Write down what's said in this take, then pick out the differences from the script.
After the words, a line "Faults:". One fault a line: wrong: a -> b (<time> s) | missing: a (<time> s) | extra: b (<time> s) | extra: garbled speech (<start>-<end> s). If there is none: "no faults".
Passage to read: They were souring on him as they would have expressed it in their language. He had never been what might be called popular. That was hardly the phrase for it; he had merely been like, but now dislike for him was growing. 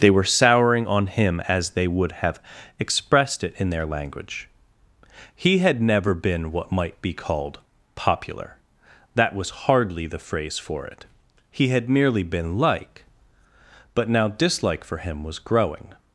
They were souring on him as they would have expressed it in their language. He had never been what might be called popular. That was hardly the phrase for it; he had merely been like, but now dislike for him was growing.
Faults:
no faults